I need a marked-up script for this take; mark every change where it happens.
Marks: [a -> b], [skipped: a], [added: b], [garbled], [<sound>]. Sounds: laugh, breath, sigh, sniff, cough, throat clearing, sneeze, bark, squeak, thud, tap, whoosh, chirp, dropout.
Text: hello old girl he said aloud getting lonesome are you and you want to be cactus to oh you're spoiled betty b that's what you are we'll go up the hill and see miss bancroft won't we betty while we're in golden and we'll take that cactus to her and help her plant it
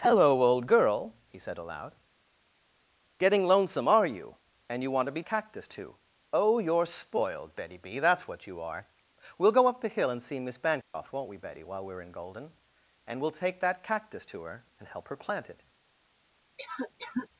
hello old girl he said aloud getting lonesome are you and you want to be cactus to oh you're spoiled betty b that's what you are we'll go up the hill and see miss bancroft [dropout] won't we betty while we're in golden and we'll take that cactus to her and help her plant it [cough]